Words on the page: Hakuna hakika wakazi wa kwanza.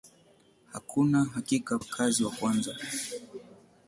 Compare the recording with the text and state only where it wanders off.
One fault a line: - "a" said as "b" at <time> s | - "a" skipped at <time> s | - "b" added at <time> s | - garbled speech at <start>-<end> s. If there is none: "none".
none